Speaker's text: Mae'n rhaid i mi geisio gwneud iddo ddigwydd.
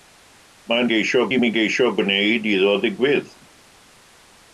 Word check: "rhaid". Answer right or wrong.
wrong